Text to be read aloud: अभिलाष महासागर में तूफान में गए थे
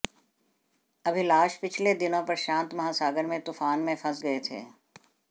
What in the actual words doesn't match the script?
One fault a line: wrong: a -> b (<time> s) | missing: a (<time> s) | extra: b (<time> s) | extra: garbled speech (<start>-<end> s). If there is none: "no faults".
extra: पिछले दिनों प्रशांत (1.6 s)
extra: फंस (4.0 s)